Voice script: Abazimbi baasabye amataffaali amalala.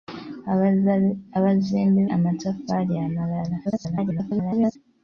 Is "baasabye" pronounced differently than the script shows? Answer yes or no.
yes